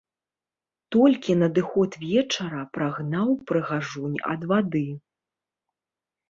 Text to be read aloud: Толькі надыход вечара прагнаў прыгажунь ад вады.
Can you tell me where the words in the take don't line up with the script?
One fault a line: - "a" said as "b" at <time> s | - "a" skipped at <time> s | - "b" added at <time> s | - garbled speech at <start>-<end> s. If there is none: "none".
none